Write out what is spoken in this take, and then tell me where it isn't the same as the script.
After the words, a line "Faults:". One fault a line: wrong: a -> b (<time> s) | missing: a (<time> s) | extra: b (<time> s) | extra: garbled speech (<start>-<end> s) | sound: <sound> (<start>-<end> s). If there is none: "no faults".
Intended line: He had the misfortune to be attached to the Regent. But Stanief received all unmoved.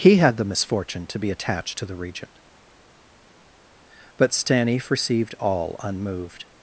He had the misfortune to be attached to the Regent. But Stanief received all unmoved.
Faults:
no faults